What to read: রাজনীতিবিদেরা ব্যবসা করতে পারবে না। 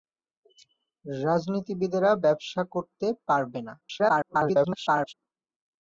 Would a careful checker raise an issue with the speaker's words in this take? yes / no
yes